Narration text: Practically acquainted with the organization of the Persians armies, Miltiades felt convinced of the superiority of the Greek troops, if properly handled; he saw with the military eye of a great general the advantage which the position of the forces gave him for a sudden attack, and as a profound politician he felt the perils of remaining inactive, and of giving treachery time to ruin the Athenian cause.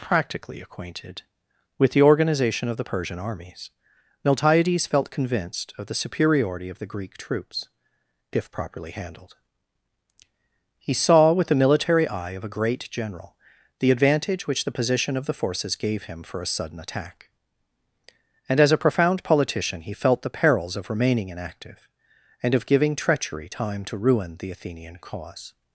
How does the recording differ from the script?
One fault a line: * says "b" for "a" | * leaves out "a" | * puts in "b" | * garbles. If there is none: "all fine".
* says "Persian" for "Persians"